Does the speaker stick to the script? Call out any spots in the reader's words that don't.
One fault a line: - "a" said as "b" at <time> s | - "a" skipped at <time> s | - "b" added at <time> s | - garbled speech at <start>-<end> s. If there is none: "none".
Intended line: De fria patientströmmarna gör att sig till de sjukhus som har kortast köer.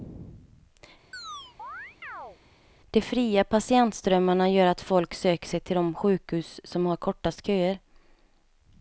- "folk söker" added at 4.8 s